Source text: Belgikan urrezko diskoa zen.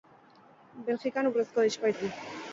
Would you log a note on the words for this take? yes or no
no